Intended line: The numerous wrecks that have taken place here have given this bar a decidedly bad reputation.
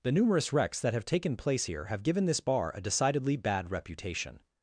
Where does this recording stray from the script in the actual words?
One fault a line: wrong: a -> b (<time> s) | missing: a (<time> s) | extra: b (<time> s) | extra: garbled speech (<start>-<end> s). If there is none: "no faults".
no faults